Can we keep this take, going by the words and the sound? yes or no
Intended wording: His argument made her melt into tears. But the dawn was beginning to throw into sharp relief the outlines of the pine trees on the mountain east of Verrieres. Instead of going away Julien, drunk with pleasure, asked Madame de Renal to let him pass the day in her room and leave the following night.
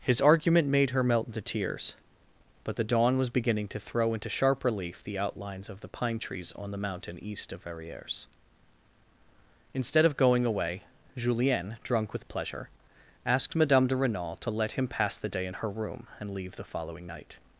yes